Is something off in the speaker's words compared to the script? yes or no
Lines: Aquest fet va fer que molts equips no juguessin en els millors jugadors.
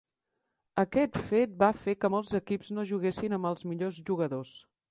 yes